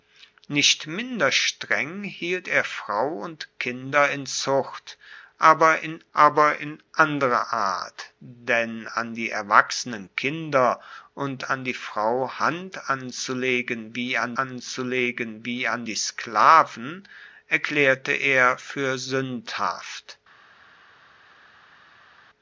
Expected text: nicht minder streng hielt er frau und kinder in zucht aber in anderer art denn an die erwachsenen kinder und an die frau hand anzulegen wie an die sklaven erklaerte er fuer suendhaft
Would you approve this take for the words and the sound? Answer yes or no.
no